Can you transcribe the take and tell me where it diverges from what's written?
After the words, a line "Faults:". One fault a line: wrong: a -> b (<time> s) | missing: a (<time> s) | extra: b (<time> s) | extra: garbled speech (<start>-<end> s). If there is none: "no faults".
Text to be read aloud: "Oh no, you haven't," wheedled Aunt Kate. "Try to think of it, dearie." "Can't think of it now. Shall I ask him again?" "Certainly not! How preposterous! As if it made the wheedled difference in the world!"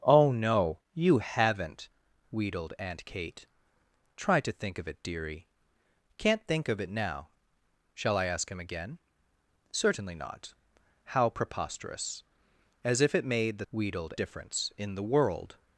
"Oh no, you haven't," wheedled Aunt Kate. "Try to think of it, dearie." "Can't think of it now. Shall I ask him again?" "Certainly not! How preposterous! As if it made the wheedled difference in the world!"
Faults:
no faults